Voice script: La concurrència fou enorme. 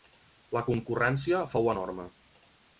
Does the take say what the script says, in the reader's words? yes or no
yes